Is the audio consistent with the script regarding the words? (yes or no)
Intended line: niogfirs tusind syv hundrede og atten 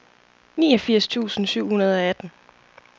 yes